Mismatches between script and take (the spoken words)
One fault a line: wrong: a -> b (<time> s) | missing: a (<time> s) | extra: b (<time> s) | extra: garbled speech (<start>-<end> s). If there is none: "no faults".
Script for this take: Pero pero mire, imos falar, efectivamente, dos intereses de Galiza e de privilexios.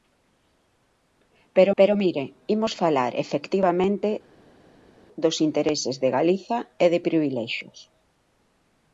no faults